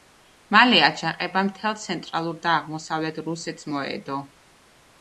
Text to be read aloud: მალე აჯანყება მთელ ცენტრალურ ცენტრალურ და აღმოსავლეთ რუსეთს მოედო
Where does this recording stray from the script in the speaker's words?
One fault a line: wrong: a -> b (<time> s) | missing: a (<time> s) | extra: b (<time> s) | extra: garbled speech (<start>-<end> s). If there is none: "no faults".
missing: ცენტრალურ (2.4 s)